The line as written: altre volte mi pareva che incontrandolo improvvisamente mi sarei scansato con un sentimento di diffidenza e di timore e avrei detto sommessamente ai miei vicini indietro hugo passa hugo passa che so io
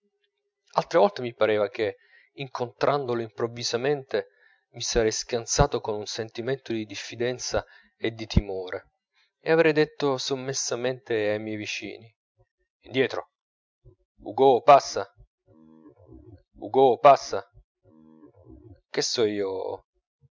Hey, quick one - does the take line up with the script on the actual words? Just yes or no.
yes